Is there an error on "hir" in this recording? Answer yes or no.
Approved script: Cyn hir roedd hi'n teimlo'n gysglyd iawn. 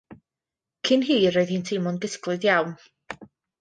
no